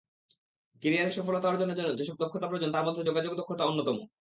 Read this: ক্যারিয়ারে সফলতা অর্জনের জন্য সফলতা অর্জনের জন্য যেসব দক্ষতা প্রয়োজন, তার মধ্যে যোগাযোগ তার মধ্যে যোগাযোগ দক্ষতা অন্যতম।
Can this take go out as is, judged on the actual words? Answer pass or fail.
fail